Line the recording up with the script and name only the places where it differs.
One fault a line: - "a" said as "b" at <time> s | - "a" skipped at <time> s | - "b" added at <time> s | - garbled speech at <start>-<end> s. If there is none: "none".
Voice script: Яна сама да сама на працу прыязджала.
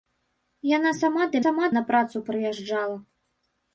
none